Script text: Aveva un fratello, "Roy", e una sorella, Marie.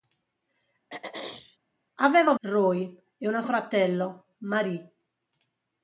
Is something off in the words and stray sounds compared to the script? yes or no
yes